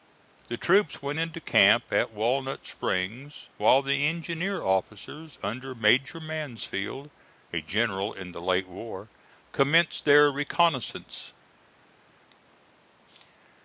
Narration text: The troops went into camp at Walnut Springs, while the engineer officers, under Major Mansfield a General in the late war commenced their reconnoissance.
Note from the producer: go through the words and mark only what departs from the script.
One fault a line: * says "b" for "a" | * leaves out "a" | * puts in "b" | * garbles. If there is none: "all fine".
all fine